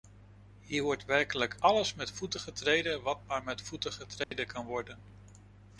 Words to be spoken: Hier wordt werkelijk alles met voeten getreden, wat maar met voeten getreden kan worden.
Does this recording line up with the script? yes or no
yes